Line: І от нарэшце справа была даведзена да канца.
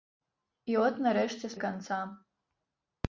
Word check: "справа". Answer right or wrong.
wrong